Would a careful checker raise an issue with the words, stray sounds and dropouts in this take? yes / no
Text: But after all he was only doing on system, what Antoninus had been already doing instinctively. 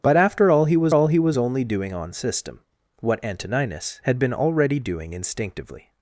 yes